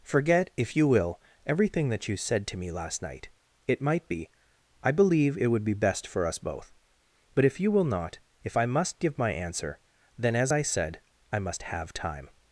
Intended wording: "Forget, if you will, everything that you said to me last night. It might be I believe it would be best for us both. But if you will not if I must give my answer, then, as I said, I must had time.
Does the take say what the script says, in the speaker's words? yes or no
no